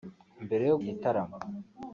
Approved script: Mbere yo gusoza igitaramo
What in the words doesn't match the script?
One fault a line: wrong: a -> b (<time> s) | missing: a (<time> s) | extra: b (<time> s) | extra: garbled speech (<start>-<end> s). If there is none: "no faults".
missing: gusoza (0.8 s)